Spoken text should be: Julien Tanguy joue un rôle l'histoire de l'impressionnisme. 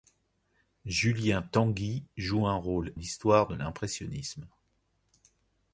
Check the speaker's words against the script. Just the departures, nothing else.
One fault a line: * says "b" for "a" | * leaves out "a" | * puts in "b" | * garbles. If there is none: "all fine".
all fine